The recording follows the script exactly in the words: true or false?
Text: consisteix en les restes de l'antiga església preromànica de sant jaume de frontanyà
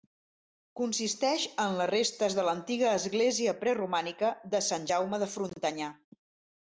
true